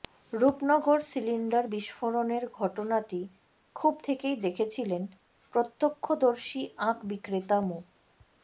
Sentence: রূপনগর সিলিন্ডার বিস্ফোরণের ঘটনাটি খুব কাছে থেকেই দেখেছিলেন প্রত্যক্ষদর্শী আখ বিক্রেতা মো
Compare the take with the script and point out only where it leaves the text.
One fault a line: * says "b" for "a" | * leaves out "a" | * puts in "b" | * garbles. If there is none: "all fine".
* leaves out "কাছে"